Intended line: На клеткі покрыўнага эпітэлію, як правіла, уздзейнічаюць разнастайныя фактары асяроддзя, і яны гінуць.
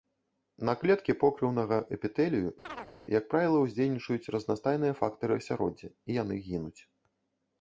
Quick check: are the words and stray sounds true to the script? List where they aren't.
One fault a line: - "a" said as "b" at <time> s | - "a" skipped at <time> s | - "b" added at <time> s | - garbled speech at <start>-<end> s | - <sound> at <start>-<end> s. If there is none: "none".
- chirp at 2.6-2.9 s